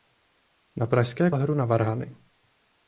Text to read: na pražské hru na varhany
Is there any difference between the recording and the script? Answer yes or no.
no